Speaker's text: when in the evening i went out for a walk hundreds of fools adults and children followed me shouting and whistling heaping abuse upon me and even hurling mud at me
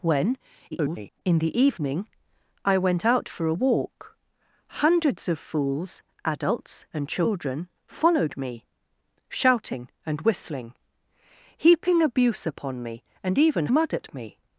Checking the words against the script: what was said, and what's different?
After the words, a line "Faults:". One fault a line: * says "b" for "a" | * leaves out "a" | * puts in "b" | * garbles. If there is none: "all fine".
when [garbled] in the evening i went out for a walk hundreds of fools adults and children followed me shouting and whistling heaping abuse upon me and even mud at me
Faults:
* garbles
* leaves out "hurling"